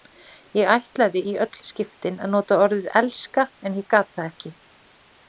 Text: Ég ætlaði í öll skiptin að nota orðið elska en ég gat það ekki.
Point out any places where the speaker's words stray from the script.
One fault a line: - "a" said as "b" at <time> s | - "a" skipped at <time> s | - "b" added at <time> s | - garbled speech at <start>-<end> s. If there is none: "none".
none